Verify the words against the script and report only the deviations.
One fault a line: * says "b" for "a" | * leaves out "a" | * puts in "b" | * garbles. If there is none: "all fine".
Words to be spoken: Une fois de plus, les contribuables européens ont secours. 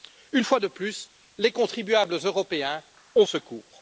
all fine